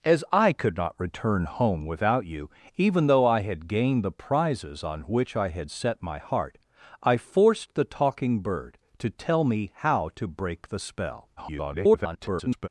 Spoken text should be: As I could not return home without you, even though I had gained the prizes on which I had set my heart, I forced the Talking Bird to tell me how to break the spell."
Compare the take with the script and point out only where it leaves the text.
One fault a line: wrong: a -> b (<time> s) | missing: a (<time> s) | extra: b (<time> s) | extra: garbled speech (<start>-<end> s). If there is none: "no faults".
extra: garbled speech (11.4-12.7 s)